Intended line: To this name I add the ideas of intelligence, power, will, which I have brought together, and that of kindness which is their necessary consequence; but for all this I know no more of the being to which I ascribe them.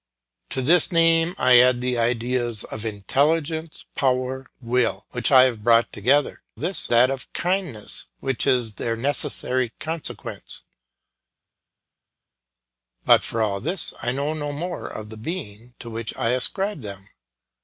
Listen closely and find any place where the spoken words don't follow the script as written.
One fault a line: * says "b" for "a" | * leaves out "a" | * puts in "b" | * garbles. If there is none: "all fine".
* says "this" for "and"